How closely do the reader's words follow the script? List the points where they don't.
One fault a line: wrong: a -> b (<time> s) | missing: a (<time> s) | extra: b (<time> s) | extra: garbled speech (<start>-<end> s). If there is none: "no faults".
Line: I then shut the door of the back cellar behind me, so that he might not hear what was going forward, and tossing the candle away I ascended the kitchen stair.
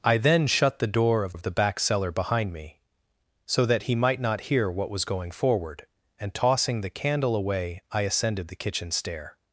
extra: of (1.3 s)